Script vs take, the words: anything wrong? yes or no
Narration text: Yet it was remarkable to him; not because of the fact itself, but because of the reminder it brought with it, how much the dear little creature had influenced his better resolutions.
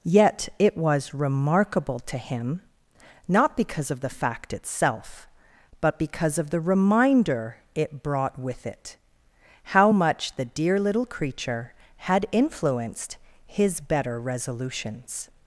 no